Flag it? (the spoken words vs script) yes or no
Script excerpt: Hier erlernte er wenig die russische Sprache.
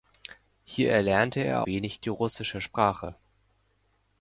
no